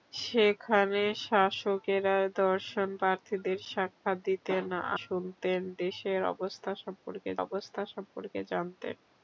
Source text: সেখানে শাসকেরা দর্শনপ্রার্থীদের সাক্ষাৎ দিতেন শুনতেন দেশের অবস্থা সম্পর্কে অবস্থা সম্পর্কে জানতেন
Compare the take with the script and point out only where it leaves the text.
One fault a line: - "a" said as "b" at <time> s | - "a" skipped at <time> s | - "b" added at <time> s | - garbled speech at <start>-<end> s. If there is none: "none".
none